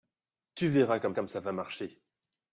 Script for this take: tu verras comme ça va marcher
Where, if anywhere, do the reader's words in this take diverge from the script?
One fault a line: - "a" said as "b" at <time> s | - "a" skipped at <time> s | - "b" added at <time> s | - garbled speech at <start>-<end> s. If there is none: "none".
- "comme" added at 1.1 s